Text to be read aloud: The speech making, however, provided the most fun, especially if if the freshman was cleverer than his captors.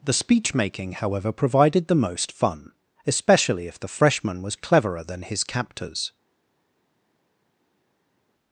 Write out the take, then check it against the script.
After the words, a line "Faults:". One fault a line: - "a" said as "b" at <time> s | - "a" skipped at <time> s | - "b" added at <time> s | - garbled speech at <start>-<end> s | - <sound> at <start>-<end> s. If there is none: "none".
The speech making, however, provided the most fun, especially if the freshman was cleverer than his captors.
Faults:
- "if" skipped at 3.8 s